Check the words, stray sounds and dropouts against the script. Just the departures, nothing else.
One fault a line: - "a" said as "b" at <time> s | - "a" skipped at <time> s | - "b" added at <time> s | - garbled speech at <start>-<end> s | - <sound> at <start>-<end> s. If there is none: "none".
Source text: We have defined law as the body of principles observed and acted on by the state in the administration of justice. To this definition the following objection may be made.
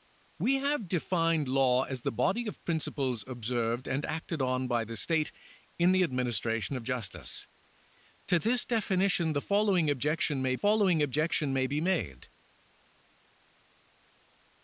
- "following objection may" added at 10.5 s